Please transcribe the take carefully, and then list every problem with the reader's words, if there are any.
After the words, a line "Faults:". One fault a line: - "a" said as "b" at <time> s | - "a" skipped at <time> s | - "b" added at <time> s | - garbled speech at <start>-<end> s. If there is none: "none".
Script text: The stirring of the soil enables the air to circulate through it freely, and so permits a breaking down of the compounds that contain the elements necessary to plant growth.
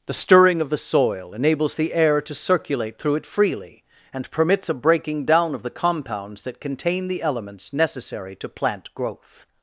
The stirring of the soil enables the air to circulate through it freely, and permits a breaking down of the compounds that contain the elements necessary to plant growth.
Faults:
- "so" skipped at 4.3 s